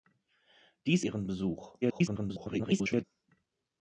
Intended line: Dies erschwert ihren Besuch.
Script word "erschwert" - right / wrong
wrong